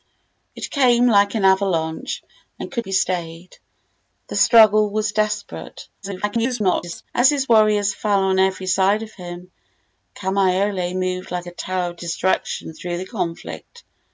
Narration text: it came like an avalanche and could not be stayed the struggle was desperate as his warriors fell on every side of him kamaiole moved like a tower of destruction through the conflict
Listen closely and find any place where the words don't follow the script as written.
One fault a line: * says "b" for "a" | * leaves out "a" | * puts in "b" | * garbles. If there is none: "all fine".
* leaves out "not"
* garbles